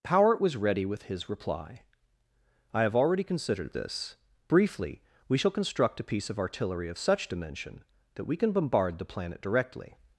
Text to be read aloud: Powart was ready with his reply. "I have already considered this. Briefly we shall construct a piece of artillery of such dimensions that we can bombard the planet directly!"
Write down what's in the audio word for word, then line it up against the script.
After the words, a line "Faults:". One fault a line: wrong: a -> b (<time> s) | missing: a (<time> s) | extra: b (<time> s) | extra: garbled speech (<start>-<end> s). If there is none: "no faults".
Powart was ready with his reply. "I have already considered this. Briefly we shall construct a piece of artillery of such dimension that we can bombard the planet directly!"
Faults:
wrong: dimensions -> dimension (7.3 s)